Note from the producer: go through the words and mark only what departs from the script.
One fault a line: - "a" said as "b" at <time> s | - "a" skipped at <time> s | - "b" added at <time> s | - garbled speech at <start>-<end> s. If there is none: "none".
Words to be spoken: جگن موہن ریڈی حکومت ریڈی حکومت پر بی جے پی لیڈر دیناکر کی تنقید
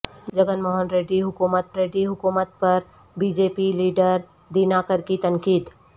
none